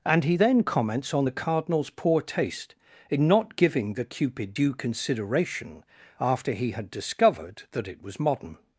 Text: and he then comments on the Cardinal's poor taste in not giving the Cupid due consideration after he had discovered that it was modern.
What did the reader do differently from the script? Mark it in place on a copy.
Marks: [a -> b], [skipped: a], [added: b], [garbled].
and he then comments on the Cardinal's poor taste in not giving the Cupid due consideration after he had discovered that it was modern.